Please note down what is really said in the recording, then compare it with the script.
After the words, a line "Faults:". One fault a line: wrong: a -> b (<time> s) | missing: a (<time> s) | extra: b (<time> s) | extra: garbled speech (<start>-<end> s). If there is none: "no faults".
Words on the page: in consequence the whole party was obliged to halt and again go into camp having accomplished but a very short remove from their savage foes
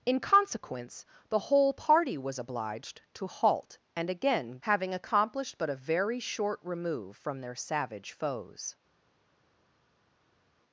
in consequence the whole party was obliged to halt and again having accomplished but a very short remove from their savage foes
Faults:
missing: go into camp (4.6 s)